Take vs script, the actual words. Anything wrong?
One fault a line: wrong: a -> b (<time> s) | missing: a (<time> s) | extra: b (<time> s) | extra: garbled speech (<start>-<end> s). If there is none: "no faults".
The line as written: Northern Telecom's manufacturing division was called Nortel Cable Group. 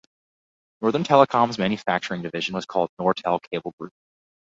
no faults